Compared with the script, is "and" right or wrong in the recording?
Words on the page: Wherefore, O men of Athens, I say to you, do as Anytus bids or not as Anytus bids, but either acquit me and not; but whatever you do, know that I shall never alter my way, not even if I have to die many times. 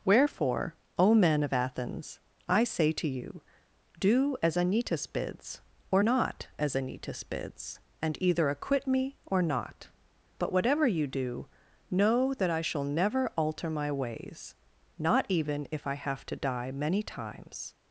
wrong